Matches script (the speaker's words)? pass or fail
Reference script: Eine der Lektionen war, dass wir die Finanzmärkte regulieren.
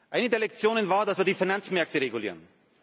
pass